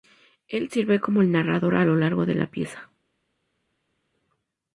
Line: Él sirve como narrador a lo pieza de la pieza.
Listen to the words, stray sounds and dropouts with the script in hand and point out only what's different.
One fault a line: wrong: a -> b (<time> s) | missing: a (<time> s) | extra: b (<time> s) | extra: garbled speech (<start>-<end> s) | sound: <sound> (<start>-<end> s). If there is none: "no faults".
extra: el (1.2 s)
wrong: pieza -> largo (2.0 s)